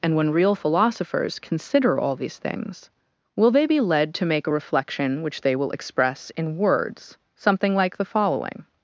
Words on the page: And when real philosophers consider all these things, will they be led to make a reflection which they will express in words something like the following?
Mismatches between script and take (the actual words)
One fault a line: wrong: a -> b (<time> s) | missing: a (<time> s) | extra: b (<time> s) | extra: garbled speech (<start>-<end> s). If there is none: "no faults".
no faults